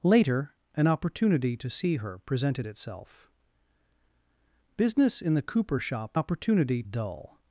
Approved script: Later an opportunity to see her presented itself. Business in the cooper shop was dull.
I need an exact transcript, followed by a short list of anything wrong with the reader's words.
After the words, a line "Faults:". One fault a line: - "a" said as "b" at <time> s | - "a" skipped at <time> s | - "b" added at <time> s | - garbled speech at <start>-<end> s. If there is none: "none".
Later an opportunity to see her presented itself. Business in the cooper shop opportunity dull.
Faults:
- "was" said as "opportunity" at 6.1 s